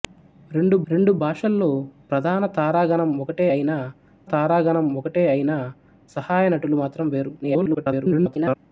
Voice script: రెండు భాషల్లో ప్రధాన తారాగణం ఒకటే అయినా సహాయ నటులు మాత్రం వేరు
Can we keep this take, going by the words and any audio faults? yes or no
no